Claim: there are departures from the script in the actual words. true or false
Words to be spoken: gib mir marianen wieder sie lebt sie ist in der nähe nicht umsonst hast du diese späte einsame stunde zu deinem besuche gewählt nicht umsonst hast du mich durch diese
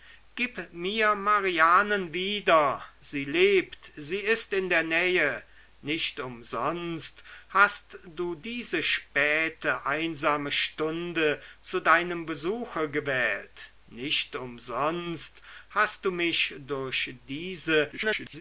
true